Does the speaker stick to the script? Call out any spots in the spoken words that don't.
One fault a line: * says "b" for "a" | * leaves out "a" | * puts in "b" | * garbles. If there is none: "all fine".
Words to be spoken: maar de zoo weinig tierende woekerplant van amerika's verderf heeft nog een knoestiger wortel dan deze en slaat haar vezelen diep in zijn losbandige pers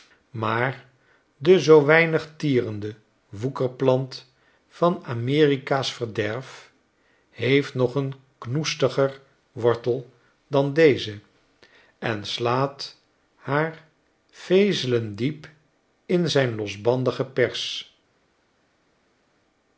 all fine